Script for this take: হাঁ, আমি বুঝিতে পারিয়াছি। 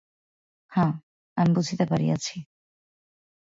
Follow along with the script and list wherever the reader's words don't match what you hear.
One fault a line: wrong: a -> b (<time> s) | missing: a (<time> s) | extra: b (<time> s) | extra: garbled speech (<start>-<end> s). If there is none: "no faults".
no faults